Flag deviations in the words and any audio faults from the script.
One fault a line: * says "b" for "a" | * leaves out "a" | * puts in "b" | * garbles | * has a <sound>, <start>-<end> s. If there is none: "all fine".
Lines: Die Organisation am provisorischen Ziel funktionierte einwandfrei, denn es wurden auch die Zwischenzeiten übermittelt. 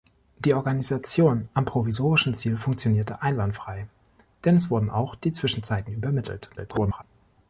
* garbles